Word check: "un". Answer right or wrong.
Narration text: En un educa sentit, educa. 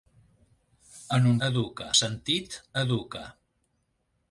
right